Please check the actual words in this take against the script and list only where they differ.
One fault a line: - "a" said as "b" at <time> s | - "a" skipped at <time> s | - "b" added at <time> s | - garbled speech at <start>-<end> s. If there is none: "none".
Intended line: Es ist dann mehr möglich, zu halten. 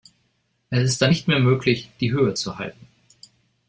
- "nicht" added at 1.1 s
- "die Höhe" added at 2.0 s